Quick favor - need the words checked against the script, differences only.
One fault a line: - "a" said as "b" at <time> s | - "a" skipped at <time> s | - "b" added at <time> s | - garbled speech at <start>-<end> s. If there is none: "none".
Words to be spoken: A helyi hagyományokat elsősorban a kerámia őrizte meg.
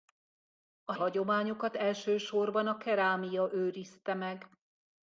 - "helyi" skipped at 0.9 s